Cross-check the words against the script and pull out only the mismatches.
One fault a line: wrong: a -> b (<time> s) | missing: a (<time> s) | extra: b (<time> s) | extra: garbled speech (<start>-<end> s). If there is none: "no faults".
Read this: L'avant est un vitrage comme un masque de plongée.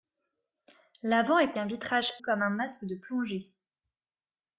no faults